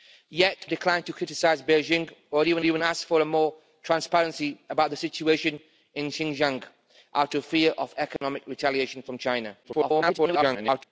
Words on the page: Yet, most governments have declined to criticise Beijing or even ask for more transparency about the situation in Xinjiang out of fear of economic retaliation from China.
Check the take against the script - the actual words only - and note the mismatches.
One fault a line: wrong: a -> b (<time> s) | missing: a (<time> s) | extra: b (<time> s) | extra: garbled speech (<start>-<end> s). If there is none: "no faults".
missing: most governments have (0.7 s)
extra: even (2.6 s)
extra: garbled speech (9.6-10.8 s)